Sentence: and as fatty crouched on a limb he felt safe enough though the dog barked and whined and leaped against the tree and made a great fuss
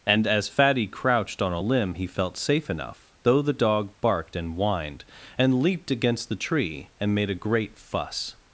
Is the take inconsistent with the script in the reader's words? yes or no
no